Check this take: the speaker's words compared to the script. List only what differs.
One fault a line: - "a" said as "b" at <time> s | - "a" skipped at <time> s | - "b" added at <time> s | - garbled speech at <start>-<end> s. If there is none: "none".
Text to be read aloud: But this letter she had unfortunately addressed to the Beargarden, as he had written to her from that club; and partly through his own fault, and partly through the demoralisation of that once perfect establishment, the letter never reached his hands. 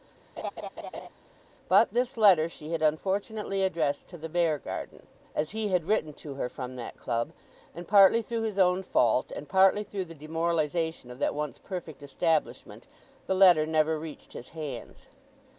none